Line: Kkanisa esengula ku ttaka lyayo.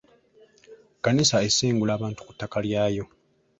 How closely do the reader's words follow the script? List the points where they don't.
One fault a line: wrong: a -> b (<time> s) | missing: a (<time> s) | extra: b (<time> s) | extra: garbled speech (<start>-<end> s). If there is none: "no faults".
extra: abantu (2.0 s)